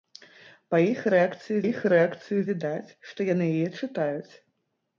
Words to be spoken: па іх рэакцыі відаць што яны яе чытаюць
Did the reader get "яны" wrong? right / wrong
right